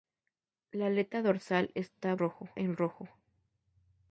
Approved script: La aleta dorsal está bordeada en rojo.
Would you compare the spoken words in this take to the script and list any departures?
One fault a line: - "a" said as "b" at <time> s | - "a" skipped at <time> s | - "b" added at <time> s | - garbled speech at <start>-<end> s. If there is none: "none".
- "bordeada" said as "rojo" at 2.2 s